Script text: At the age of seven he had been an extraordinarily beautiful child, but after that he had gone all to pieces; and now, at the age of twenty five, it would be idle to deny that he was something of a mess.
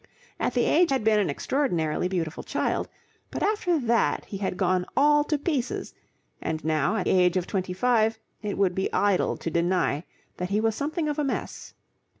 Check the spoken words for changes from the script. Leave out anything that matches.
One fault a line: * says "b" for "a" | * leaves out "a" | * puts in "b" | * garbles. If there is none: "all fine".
* leaves out "of seven he"
* leaves out "the"